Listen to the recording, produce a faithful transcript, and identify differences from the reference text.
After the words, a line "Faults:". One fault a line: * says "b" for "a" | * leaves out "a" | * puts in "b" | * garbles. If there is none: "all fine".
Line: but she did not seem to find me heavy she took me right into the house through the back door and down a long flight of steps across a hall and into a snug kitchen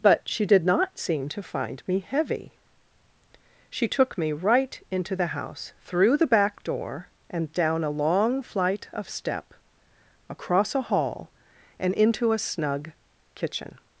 but she did not seem to find me heavy she took me right into the house through the back door and down a long flight of step across a hall and into a snug kitchen
Faults:
* says "step" for "steps"